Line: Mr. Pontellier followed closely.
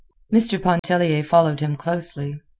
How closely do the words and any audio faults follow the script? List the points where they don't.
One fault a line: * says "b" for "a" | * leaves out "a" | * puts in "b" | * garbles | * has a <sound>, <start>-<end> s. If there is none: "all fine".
* has a dropout, 0.8-0.8 s
* puts in "him"